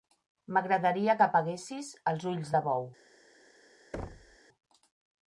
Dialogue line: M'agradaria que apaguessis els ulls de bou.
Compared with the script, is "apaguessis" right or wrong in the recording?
right